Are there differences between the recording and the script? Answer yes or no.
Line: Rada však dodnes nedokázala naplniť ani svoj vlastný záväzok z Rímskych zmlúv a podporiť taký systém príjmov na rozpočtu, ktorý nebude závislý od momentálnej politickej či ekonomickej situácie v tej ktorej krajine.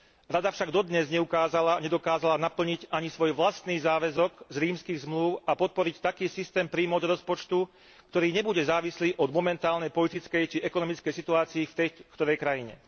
yes